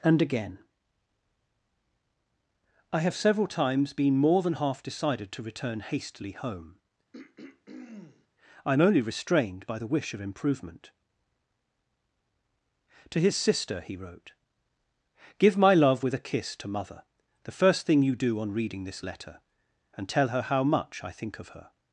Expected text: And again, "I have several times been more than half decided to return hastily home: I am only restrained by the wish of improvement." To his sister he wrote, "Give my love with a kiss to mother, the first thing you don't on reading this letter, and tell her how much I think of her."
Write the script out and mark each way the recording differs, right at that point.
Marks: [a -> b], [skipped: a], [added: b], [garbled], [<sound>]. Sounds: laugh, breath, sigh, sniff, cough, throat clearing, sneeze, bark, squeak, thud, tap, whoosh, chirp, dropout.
And again, "I have several times been more than half decided to return hastily home: [throat clearing] I am only restrained by the wish of improvement." To his sister he wrote, "Give my love with a kiss to mother, the first thing you [don't -> do] on reading this letter, and tell her how much I think of her."